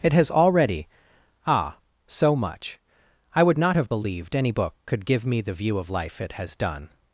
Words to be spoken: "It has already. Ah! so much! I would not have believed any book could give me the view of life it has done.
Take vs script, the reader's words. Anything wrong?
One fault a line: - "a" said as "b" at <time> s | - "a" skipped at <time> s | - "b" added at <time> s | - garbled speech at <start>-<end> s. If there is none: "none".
none